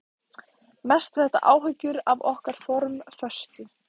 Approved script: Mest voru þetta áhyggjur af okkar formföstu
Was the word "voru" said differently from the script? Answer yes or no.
yes